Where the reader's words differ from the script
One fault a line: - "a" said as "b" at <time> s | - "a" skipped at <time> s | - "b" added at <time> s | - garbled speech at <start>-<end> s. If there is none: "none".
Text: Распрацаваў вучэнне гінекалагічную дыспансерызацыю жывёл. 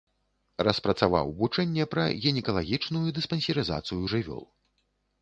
- "пра" added at 1.9 s